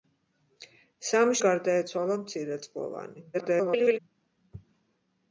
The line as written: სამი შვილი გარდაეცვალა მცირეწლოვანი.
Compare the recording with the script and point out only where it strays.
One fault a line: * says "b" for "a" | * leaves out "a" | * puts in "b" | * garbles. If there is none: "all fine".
* leaves out "შვილი"
* garbles